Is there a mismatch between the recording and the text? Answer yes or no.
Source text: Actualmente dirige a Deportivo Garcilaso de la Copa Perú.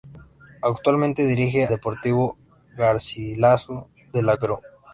yes